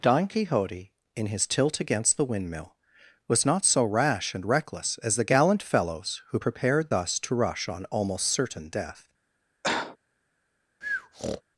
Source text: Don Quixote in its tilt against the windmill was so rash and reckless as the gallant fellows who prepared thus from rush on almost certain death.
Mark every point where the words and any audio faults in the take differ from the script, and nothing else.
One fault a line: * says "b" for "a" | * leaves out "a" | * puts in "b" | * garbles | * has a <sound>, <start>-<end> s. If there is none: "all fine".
* says "his" for "its"
* puts in "not"
* says "to" for "from"
* has a cough, 9.6-10.0 s
* has a breath, 10.8-11.4 s